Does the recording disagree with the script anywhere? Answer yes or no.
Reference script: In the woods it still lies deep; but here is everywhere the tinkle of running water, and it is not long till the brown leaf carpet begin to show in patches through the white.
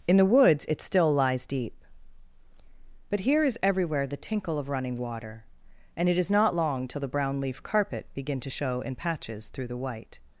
no